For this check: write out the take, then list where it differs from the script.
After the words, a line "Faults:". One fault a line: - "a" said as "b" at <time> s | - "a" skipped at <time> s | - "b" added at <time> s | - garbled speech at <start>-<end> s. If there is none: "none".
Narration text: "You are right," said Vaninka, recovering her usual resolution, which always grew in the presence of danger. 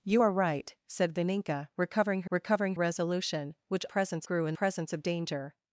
"You are right," said Vaninka, recovering her recovering resolution, which presence grew in presence of danger.
Faults:
- "usual" said as "recovering" at 2.3 s
- "always" said as "presence" at 3.9 s
- "the" skipped at 4.6 s